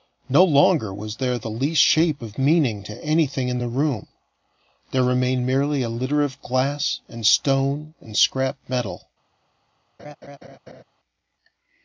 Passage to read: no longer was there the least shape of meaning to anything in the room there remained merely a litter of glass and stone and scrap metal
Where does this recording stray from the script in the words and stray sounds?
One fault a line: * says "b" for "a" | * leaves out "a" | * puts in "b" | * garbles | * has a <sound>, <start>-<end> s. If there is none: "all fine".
* has a laugh, 10.0-10.8 s